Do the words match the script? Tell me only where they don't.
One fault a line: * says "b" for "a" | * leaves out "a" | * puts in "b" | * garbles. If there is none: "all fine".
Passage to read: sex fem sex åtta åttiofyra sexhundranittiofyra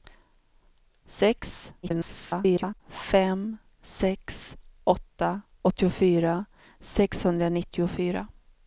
* garbles